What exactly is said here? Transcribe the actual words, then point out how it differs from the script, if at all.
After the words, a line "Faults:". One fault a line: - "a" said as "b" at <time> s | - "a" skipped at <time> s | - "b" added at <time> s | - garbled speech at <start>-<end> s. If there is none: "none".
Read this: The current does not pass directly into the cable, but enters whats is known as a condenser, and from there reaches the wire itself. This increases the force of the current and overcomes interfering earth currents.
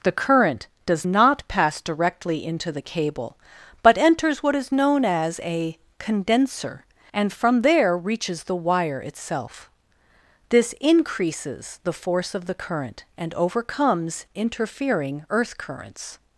The current does not pass directly into the cable, but enters what is known as a condenser, and from there reaches the wire itself. This increases the force of the current and overcomes interfering earth currents.
Faults:
- "whats" said as "what" at 4.4 s